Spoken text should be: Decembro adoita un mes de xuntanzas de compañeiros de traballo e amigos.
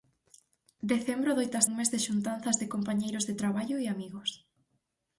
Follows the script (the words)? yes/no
yes